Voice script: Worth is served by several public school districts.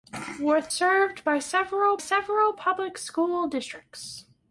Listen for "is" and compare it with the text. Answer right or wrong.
wrong